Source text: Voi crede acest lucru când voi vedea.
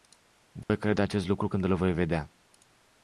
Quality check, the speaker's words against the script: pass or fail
fail